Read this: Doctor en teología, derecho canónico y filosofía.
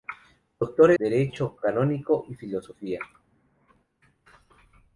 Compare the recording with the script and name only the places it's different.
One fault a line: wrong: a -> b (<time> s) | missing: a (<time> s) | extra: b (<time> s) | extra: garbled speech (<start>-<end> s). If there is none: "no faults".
missing: en teología (0.9 s)